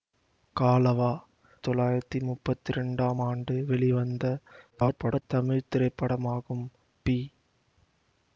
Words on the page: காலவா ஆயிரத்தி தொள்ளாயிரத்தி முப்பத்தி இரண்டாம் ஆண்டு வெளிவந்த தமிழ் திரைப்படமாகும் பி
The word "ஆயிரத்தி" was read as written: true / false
false